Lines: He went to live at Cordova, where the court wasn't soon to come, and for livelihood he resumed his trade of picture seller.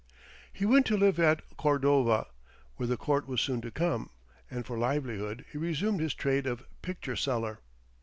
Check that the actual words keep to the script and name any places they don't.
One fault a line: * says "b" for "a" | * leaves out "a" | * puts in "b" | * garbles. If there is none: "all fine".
* says "was" for "wasn't"